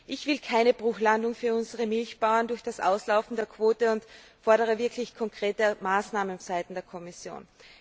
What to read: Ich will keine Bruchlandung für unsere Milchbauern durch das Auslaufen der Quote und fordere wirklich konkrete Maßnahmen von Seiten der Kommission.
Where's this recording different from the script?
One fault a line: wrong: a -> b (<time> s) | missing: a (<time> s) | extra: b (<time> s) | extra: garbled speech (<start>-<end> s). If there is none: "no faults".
missing: von (6.4 s)